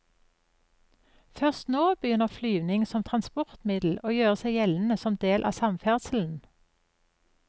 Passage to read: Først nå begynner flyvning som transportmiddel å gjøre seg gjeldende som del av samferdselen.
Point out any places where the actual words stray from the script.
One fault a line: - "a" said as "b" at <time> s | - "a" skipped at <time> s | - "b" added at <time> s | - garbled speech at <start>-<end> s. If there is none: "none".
none